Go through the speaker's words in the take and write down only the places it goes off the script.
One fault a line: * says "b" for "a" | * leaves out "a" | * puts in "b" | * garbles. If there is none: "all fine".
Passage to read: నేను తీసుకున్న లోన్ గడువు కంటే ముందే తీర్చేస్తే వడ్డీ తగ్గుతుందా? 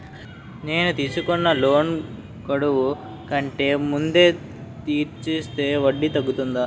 all fine